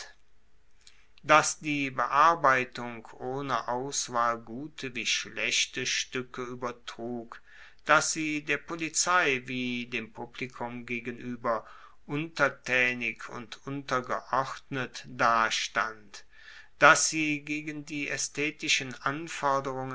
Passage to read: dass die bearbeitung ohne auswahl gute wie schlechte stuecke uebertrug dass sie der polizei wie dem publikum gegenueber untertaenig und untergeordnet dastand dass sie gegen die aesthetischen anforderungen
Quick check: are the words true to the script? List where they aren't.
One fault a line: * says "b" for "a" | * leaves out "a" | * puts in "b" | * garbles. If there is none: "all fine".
all fine